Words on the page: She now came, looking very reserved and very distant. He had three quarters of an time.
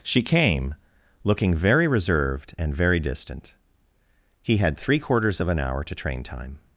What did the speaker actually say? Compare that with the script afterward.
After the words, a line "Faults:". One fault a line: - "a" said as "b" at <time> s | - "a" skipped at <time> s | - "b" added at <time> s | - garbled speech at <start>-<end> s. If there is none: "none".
She came, looking very reserved and very distant. He had three quarters of an hour to train time.
Faults:
- "now" skipped at 0.2 s
- "hour to train" added at 5.6 s